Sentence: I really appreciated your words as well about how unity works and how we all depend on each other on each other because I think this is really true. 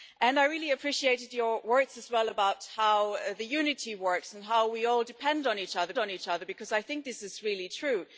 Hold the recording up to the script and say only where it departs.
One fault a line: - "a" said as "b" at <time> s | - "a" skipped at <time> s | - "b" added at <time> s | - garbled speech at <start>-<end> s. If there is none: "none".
none